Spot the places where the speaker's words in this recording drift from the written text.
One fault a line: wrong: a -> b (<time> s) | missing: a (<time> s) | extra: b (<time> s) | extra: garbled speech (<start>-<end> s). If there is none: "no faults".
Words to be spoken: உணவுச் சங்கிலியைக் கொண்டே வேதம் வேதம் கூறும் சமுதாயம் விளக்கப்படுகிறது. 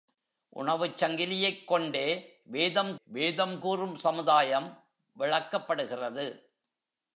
no faults